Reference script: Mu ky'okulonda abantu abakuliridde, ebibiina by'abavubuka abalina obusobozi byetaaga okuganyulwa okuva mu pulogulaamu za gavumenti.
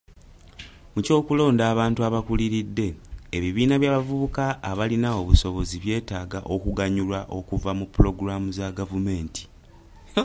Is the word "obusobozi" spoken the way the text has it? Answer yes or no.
yes